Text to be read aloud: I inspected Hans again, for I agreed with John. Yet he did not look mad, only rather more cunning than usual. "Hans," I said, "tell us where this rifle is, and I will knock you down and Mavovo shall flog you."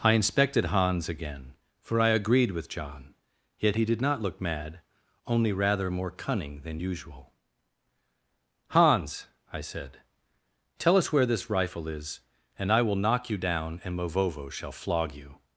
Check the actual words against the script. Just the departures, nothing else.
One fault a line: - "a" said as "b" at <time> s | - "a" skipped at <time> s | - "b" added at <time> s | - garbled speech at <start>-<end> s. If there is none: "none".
none